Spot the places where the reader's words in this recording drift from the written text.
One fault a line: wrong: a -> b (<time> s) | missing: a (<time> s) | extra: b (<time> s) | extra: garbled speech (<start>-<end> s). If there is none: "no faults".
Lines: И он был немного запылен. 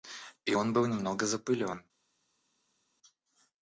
no faults